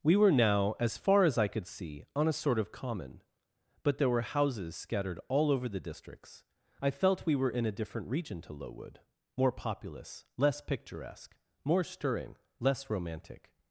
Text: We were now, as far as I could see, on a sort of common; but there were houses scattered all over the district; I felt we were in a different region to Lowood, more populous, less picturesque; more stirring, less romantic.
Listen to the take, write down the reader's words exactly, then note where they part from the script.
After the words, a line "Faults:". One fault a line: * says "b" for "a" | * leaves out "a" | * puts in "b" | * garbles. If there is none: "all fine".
We were now, as far as I could see, on a sort of common; but there were houses scattered all over the districts; I felt we were in a different region to Lowood, more populous, less picturesque; more stirring, less romantic.
Faults:
* says "districts" for "district"